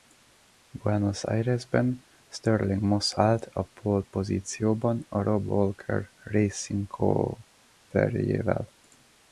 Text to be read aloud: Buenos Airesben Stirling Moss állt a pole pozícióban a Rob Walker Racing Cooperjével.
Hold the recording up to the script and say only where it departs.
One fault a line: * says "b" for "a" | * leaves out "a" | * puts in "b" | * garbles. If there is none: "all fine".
all fine